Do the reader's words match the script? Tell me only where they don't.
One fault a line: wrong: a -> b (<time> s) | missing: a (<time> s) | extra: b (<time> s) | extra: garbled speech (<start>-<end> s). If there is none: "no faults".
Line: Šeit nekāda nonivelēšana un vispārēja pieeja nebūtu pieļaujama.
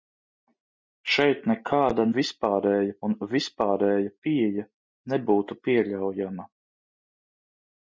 wrong: nonivelēšana -> vispārēja (2.2 s)